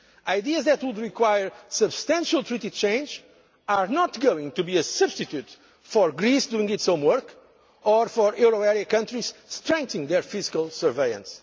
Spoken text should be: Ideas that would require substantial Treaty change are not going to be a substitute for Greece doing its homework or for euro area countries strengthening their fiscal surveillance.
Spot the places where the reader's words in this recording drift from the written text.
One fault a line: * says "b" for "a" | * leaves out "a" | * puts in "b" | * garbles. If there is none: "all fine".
all fine